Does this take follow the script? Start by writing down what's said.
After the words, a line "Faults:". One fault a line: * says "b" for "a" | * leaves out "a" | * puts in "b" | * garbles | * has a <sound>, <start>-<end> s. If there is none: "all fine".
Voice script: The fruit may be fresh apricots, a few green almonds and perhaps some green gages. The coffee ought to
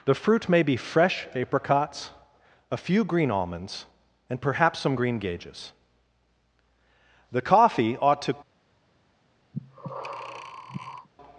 The fruit may be fresh apricots, a few green almonds and perhaps some green gages. The coffee ought to
Faults:
* has a breath, 9.5-11.1 s